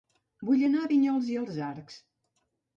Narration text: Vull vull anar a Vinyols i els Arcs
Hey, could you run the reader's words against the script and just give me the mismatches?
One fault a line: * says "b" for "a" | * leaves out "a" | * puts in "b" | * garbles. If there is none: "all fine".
* leaves out "vull"